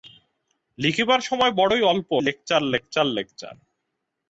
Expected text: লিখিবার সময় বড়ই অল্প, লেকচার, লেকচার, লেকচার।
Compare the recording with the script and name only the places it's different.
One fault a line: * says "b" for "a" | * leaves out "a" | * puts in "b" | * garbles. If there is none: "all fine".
all fine